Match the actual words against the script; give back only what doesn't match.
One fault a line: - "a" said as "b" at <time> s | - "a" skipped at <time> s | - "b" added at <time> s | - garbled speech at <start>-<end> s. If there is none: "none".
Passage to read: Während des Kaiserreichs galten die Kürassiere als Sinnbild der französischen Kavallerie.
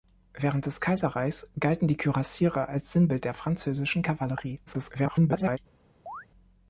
- garbled speech at 4.7-5.6 s